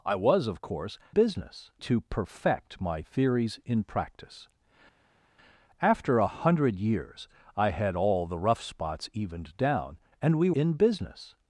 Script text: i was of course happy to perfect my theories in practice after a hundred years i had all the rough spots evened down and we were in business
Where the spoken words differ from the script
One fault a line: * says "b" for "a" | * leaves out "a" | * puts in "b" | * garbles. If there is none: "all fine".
* says "business" for "happy"
* leaves out "were"